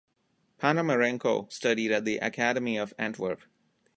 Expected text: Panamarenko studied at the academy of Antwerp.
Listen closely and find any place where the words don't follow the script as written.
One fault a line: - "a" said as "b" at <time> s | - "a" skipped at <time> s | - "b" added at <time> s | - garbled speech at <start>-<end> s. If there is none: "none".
none